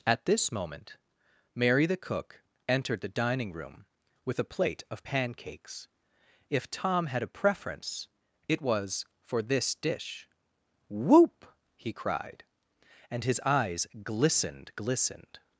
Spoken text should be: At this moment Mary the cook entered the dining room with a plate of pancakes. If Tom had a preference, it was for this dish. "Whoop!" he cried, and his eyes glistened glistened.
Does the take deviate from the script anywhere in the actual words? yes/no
no